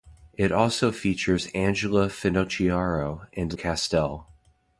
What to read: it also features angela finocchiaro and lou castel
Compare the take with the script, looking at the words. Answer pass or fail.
fail